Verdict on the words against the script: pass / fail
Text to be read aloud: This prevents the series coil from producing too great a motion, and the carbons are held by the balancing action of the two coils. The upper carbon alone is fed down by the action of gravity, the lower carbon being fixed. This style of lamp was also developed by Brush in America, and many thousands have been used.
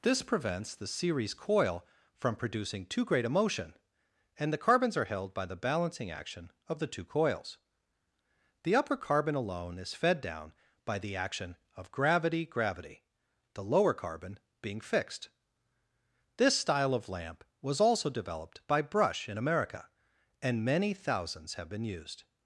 fail